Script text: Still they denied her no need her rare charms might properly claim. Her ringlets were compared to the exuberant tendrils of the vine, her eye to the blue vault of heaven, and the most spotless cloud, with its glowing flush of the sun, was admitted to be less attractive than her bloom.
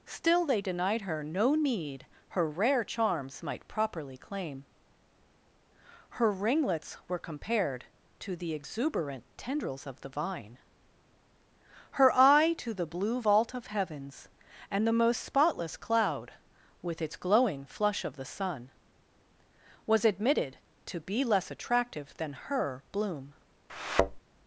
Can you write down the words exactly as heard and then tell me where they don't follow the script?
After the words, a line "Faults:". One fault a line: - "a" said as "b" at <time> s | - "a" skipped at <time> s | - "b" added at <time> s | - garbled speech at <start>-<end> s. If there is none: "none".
Still they denied her no need her rare charms might properly claim. Her ringlets were compared to the exuberant tendrils of the vine, her eye to the blue vault of heavens, and the most spotless cloud, with its glowing flush of the sun, was admitted to be less attractive than her bloom.
Faults:
- "heaven" said as "heavens" at 13.7 s